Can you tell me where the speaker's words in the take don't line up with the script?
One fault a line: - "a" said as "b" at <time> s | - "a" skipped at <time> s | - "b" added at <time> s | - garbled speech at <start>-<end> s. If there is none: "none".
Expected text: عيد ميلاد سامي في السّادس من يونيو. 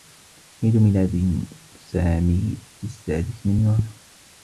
none